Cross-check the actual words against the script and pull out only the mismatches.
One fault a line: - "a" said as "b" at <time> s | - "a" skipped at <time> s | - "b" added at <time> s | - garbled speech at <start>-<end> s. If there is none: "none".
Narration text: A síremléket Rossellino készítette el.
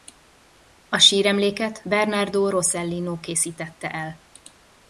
- "Bernardo" added at 1.8 s